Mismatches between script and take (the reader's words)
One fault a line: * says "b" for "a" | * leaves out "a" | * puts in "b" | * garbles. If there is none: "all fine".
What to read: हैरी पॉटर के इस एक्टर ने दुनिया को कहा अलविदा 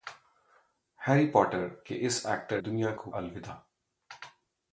* leaves out "ने"
* leaves out "कहा"